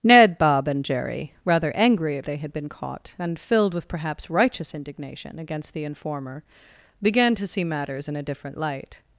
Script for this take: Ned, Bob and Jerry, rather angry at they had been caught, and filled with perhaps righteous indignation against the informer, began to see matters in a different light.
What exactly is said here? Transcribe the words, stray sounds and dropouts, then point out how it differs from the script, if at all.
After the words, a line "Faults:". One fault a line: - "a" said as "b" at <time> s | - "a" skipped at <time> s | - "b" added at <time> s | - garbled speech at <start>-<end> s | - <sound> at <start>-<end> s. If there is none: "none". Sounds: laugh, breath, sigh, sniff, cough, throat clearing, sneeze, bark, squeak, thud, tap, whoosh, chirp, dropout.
Ned, Bob and Jerry, rather angry at they had been caught, and filled with perhaps righteous indignation against the informer, began to see matters in a different light.
Faults:
none